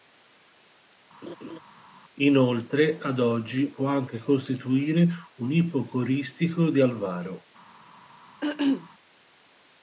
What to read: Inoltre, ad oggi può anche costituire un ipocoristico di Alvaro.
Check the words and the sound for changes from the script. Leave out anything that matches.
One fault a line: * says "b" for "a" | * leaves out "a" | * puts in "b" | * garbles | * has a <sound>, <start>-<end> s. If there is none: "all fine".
* has a laugh, 1.2-1.6 s
* has a throat clearing, 8.4-8.9 s